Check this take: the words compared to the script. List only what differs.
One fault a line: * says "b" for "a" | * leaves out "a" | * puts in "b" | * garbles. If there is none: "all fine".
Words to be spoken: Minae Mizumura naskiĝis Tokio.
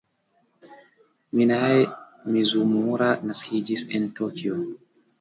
* puts in "en"